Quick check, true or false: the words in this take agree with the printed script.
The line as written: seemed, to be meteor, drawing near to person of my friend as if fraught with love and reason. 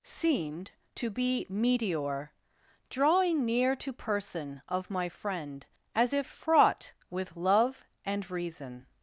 true